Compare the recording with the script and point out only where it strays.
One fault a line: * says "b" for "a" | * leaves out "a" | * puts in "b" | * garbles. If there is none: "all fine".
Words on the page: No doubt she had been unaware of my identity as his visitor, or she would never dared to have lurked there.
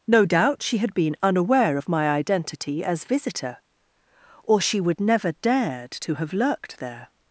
* leaves out "his"